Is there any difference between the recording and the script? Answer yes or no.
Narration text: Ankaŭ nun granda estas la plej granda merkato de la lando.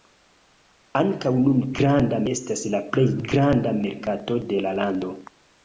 no